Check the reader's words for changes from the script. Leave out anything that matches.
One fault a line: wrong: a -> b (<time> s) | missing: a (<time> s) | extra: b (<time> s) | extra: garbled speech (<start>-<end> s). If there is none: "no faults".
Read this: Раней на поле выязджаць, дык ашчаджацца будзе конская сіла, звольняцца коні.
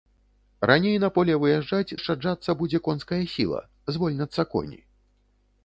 missing: дык (2.0 s)